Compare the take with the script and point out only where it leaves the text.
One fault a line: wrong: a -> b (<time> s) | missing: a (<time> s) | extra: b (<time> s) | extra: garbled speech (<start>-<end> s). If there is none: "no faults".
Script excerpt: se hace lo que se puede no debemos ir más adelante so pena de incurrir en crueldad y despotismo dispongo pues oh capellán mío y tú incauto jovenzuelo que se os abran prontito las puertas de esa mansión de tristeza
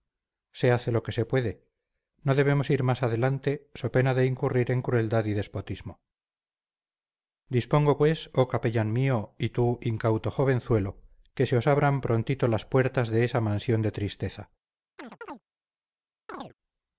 no faults